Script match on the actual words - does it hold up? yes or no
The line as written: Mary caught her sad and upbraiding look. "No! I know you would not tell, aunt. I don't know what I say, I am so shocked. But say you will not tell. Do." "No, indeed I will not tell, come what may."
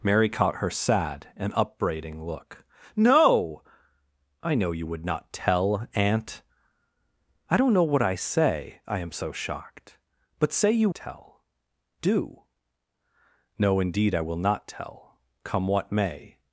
no